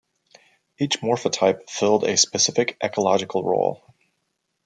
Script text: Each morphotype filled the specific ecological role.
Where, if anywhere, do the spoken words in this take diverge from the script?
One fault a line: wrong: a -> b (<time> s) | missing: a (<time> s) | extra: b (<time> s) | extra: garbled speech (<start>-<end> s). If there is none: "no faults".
wrong: the -> a (2.0 s)